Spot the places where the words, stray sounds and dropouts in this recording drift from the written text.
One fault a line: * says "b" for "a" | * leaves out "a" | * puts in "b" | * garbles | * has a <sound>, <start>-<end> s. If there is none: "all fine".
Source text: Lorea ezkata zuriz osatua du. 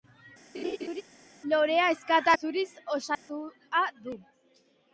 * has a laugh, 0.5-1.0 s
* has a dropout, 3.1-3.3 s